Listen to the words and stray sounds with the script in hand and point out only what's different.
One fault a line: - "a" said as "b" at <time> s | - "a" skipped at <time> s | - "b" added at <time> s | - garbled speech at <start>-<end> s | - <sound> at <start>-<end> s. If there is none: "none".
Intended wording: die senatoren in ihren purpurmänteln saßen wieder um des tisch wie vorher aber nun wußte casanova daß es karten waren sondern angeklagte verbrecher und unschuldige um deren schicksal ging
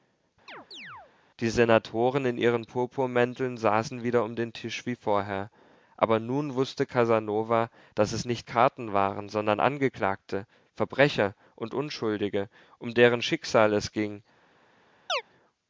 - chirp at 0.5-1.1 s
- "des" said as "den" at 4.4 s
- "nicht" added at 8.3 s
- "es" added at 13.7 s
- chirp at 15.1-15.2 s